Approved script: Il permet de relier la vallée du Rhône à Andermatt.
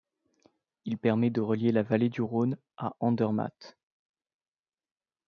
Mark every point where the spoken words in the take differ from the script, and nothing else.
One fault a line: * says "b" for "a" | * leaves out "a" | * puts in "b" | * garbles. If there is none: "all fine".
all fine